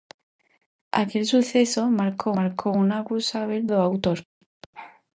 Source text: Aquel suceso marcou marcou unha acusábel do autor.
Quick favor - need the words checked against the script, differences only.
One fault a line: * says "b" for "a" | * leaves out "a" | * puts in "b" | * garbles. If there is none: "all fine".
all fine